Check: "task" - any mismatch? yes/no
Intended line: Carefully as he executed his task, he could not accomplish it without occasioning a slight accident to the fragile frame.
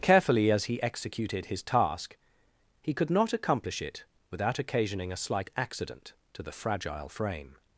no